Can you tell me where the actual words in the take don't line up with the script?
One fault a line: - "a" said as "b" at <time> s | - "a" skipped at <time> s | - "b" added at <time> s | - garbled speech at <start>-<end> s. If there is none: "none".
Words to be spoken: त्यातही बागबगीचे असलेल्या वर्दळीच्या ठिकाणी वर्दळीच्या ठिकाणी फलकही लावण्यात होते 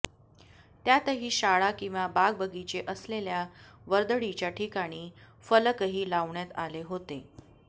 - "शाळा किंवा" added at 1.3 s
- "वर्दळीच्या ठिकाणी" skipped at 5.1 s
- "आले" added at 6.6 s